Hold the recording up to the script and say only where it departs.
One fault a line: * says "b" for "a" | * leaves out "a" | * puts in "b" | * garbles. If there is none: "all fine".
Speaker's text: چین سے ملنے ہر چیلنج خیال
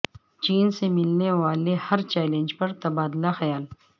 * puts in "والے"
* puts in "پر تبادلہ"